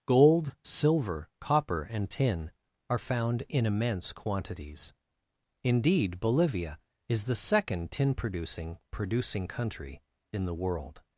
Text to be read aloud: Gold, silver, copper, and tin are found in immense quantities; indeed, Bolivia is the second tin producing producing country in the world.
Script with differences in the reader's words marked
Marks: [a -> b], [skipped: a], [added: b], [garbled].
Gold, silver, copper, and tin are found in immense quantities; indeed, Bolivia is the second tin producing producing country in the world.